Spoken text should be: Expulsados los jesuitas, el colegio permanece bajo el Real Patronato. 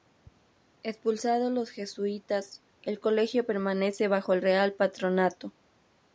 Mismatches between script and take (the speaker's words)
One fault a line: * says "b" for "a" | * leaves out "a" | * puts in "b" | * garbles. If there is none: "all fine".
all fine